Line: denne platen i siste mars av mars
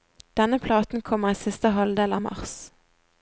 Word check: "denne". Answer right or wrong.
right